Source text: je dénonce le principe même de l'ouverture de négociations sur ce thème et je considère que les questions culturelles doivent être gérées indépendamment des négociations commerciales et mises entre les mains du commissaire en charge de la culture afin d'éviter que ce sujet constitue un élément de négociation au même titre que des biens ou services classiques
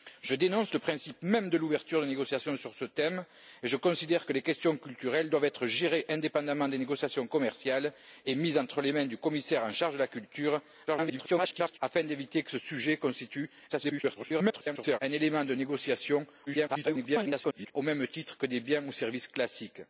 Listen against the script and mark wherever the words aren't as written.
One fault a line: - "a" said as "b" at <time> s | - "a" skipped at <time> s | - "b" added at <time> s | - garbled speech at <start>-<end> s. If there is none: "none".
- garbled speech at 10.9-11.8 s
- garbled speech at 13.7-15.0 s
- garbled speech at 16.5-17.7 s